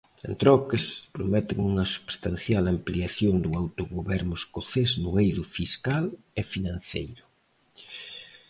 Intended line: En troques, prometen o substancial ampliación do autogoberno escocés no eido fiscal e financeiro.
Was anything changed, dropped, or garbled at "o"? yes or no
yes